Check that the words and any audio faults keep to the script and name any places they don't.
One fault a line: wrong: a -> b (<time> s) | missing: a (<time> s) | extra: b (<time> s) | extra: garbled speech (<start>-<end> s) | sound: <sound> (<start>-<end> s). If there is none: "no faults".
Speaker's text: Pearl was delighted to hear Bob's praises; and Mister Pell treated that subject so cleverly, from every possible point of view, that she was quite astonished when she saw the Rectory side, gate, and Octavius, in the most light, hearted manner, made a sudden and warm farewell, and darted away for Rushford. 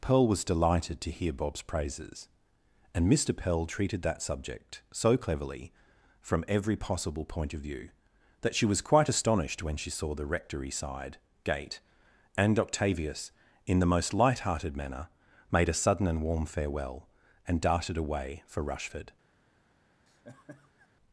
sound: laugh (20.1-20.9 s)